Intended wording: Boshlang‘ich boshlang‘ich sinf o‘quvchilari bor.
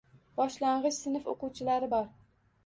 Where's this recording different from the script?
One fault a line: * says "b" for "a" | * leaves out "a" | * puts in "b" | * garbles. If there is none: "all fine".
* leaves out "boshlang‘ich"